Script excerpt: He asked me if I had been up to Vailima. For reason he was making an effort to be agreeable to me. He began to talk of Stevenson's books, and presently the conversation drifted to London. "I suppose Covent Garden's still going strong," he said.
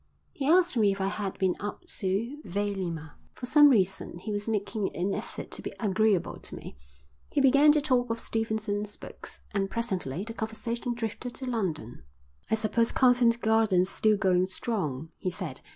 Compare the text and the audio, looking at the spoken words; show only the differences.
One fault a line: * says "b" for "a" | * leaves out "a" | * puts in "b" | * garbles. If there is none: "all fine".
* puts in "some"